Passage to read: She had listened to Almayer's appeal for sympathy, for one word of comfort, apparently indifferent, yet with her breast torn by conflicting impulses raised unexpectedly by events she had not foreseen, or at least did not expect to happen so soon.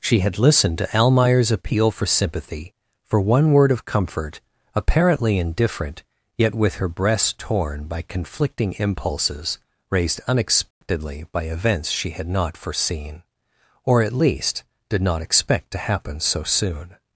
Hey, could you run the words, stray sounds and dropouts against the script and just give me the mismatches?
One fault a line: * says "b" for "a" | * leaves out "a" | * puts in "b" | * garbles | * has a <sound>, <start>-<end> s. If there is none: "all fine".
* has a dropout, 10.7-10.8 s